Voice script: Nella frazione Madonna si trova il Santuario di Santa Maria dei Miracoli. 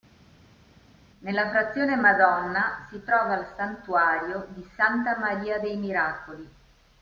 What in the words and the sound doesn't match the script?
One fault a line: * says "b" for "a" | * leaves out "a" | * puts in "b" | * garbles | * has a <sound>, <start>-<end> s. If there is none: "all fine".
all fine